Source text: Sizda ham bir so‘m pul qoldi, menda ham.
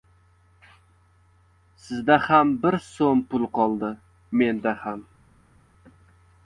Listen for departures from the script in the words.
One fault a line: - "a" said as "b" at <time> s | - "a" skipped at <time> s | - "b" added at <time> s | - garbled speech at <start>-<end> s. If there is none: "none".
none